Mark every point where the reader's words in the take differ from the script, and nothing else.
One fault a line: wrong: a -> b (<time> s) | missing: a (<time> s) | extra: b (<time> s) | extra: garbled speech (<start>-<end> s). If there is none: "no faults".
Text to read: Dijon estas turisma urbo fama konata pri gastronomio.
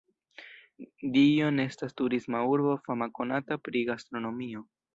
no faults